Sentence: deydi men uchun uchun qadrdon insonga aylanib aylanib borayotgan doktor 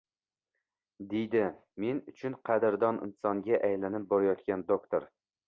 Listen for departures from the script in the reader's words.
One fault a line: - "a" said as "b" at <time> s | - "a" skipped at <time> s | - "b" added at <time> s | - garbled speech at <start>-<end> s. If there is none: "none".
- "uchun" skipped at 2.4 s
- "aylanib" skipped at 4.1 s